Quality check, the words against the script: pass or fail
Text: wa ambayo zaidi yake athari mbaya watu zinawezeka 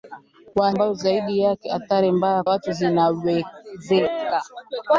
pass